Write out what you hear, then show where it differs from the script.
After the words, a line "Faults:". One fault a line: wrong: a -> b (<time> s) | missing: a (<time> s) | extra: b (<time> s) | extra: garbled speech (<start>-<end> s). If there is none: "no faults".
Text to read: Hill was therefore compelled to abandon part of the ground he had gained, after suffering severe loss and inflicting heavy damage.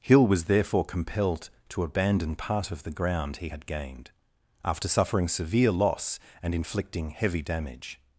Hill was therefore compelled to abandon part of the ground he had gained, after suffering severe loss and inflicting heavy damage.
Faults:
no faults